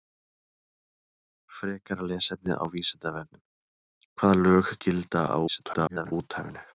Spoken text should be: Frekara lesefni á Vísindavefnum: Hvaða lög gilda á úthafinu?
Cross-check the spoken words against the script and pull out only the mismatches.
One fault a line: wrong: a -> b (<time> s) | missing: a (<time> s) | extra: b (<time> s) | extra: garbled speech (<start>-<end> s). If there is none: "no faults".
extra: garbled speech (5.5-6.1 s)